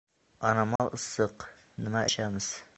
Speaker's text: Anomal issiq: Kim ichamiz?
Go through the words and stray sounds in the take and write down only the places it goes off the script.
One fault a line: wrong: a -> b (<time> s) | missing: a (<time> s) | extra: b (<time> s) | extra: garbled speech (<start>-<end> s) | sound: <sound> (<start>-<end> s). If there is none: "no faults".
sound: dropout (0.8-0.8 s)
wrong: Kim -> Nima (1.8 s)